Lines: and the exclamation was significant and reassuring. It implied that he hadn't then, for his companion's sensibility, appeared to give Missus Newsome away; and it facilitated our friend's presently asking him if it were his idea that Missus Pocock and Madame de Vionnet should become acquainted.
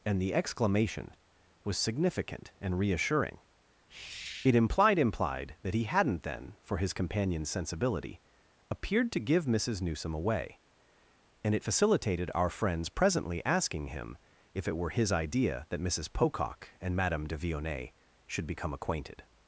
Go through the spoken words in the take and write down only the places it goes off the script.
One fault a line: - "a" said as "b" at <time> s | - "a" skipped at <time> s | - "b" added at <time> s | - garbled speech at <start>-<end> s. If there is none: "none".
- "implied" added at 5.0 s